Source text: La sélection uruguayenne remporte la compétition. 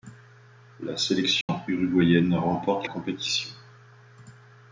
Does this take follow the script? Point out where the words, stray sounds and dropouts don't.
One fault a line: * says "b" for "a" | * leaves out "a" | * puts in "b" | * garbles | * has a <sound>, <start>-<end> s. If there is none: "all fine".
* has a dropout, 1.4-1.5 s
* leaves out "la"